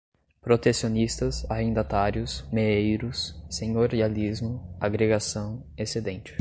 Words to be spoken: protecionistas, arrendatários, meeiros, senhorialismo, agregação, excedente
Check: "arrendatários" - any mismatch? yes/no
no